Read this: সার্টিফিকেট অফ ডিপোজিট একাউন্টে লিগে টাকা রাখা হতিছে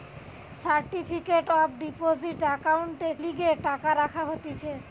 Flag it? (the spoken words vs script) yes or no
no